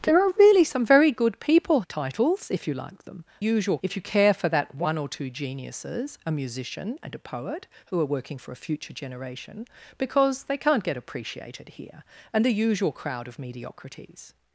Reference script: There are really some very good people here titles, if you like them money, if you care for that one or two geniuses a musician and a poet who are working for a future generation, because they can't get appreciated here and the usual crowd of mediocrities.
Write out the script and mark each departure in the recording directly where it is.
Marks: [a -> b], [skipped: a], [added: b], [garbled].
There are really some very good people [skipped: here] titles, if you like them [money, -> usual] if you care for that one or two geniuses a musician and a poet who are working for a future generation, because they can't get appreciated here and the usual crowd of mediocrities.